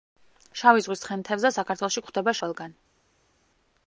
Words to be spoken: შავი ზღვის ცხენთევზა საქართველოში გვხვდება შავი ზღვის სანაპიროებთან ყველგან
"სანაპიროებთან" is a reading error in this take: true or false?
true